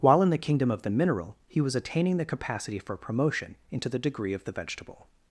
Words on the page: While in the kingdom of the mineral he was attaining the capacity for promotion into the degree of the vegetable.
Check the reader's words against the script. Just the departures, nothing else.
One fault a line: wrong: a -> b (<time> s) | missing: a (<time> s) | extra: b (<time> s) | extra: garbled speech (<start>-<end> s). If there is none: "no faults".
no faults